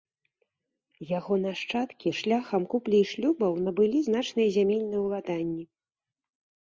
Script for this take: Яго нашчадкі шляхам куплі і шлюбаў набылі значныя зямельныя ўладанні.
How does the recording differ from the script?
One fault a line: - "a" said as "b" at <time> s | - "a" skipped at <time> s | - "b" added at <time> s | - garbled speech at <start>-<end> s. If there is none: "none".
none